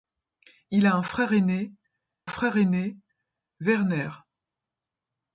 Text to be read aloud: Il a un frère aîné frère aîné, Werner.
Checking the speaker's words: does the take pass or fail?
pass